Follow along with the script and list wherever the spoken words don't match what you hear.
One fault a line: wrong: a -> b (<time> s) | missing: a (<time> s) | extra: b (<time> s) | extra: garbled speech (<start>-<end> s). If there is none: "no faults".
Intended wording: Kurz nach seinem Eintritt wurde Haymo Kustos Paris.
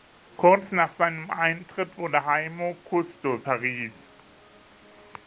no faults